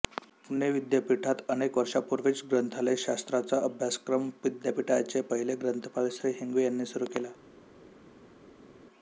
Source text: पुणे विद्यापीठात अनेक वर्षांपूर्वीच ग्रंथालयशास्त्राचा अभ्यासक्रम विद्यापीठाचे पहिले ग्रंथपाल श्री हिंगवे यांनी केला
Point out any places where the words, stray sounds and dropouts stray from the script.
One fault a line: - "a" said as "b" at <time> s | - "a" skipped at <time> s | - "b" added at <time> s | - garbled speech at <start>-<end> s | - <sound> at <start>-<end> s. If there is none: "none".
- "सुरू" added at 6.9 s